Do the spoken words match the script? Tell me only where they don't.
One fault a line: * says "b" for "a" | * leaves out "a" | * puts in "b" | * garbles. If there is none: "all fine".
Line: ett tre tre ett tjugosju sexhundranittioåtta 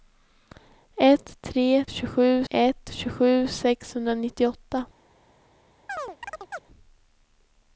* says "tjugosju" for "tre"